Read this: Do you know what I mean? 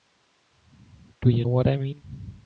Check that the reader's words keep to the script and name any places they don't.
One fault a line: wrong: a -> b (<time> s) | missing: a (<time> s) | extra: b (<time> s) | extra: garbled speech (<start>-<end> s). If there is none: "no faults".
missing: know (1.4 s)